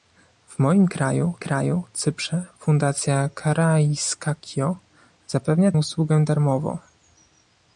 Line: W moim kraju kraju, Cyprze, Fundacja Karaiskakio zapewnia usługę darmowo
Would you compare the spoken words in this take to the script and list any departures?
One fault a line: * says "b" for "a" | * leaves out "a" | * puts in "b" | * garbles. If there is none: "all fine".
all fine